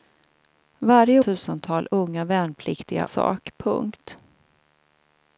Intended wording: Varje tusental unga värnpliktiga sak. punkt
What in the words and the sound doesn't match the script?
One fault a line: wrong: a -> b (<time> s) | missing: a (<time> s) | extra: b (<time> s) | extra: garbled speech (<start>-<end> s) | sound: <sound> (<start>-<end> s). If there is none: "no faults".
no faults